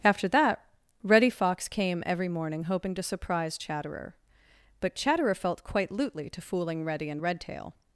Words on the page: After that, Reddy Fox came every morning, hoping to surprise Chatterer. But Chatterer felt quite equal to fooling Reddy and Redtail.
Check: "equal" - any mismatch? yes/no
yes